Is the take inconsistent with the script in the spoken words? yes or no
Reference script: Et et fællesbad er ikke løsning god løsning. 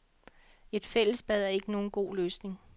yes